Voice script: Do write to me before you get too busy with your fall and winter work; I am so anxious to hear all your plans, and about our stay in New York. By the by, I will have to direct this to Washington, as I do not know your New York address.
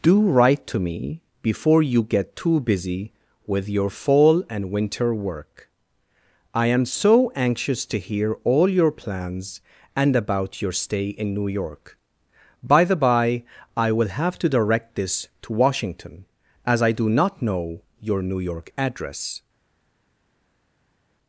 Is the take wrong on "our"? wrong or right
wrong